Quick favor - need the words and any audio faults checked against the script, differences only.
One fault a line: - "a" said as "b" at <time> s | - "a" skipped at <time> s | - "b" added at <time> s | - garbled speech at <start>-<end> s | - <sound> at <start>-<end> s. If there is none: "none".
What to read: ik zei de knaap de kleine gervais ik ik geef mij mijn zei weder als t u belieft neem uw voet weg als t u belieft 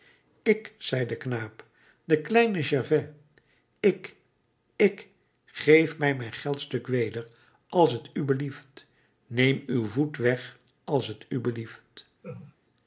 - "zei" said as "geldstuk" at 6.3 s
- laugh at 12.2-12.6 s